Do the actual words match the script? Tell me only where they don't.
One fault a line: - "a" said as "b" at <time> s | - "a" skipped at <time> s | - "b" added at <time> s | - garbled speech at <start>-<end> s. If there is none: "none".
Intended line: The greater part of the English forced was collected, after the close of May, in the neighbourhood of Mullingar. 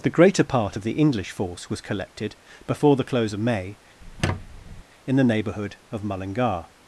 - "forced" said as "force" at 1.3 s
- "after" said as "before" at 2.7 s